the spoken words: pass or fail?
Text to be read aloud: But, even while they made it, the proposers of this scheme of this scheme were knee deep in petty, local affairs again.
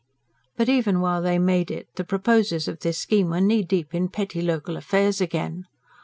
fail